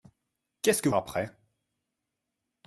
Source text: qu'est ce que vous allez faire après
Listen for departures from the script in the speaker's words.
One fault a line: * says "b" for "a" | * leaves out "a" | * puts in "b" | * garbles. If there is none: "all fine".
* leaves out "vous allez faire"